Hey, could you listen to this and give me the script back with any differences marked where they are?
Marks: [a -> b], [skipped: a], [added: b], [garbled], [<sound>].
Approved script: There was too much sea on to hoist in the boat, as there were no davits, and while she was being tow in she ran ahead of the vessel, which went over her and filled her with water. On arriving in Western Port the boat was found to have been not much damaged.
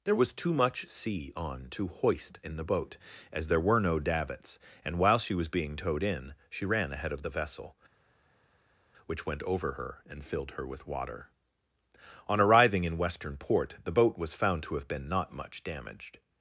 There was too much sea on to hoist in the boat, as there were no davits, and while she was being [tow -> towed] in she ran ahead of the vessel, which went over her and filled her with water. On arriving in Western Port the boat was found to have been not much damaged.